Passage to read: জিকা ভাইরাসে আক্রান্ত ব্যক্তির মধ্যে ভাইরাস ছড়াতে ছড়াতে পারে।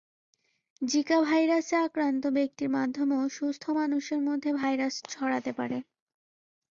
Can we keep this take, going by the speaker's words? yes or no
no